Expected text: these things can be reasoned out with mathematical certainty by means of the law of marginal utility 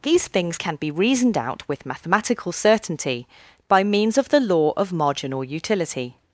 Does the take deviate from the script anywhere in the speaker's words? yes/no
no